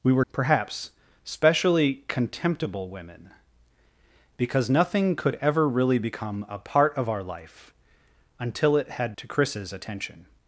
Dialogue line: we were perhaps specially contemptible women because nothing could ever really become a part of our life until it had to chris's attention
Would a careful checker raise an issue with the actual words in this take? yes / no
no